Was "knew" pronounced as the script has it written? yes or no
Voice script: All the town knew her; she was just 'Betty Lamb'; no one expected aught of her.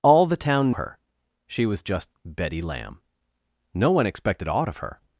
no